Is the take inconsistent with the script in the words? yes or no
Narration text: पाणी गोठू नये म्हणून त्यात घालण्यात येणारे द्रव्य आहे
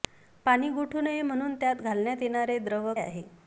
no